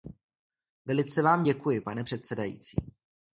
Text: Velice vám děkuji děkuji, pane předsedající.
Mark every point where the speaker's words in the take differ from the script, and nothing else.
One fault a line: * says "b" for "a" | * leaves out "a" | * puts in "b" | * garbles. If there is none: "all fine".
* leaves out "děkuji"